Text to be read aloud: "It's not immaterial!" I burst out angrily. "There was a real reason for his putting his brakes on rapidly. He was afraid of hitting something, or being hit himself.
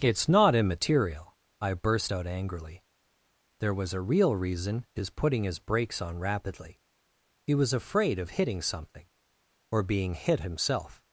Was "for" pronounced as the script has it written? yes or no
no